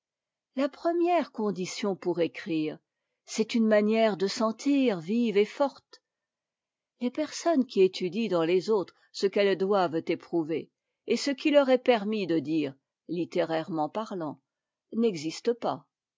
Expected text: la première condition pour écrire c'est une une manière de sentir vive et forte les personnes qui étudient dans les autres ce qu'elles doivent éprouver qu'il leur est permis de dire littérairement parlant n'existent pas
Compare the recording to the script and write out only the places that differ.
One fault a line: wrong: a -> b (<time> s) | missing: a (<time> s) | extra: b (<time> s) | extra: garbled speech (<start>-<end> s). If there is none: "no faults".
missing: une (3.7 s)
extra: et ce (11.1 s)